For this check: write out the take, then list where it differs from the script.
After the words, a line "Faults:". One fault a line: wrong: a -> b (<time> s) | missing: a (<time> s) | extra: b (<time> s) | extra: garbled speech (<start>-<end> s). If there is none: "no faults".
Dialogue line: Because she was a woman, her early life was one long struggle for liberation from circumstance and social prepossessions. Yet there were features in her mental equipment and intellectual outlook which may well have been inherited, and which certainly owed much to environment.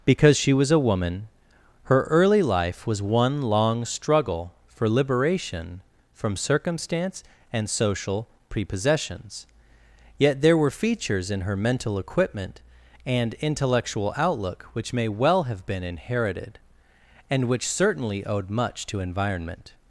Because she was a woman, her early life was one long struggle for liberation from circumstance and social prepossessions. Yet there were features in her mental equipment and intellectual outlook which may well have been inherited, and which certainly owed much to environment.
Faults:
no faults